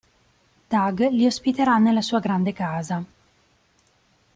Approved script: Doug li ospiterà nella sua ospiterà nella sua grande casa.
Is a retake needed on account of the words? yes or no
yes